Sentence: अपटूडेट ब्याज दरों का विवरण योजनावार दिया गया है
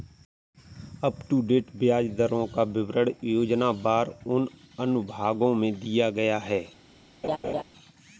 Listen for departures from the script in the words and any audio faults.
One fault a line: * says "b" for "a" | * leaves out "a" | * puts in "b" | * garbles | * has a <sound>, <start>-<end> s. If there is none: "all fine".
* puts in "उन अनुभागों में"
* has a laugh, 7.2-7.6 s